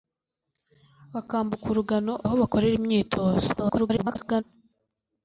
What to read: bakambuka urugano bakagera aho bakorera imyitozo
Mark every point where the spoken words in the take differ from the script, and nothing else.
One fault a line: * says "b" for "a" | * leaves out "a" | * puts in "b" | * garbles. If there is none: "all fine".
* leaves out "bakagera"
* garbles